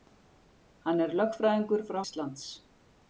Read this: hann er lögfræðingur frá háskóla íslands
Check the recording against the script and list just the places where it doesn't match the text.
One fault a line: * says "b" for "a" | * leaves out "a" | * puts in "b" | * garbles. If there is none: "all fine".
* leaves out "háskóla"